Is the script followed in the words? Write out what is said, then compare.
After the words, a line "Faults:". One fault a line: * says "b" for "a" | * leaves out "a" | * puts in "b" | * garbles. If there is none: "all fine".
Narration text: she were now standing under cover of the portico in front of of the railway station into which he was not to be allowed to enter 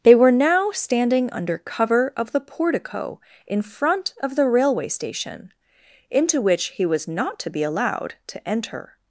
they were now standing under cover of the portico in front of the railway station into which he was not to be allowed to enter
Faults:
* says "they" for "she"
* leaves out "of"